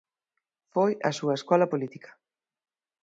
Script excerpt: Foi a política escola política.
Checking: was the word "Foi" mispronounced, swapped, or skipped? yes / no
no